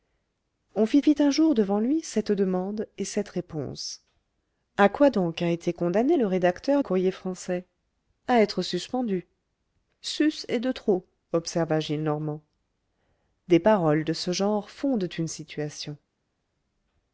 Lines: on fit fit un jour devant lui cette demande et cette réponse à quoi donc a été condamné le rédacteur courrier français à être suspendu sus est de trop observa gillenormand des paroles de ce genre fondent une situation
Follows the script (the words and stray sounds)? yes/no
yes